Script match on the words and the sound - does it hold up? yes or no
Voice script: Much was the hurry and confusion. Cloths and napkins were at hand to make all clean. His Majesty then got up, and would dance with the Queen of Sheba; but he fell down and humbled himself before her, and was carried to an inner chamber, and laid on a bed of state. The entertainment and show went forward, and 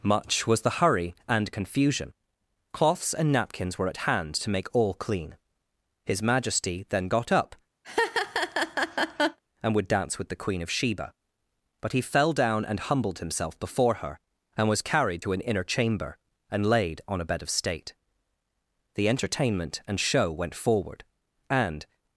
no